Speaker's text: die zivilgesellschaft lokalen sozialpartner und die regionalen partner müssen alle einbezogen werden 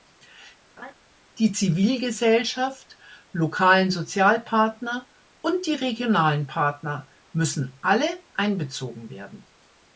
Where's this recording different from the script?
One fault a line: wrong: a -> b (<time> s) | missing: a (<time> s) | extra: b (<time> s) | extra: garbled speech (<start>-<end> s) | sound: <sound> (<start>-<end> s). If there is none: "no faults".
sound: laugh (0.8-0.9 s)